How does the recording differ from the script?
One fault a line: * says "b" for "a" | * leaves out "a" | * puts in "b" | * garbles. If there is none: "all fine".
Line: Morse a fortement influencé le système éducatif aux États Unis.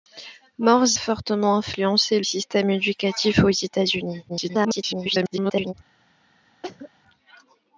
* leaves out "a"
* leaves out "le"
* garbles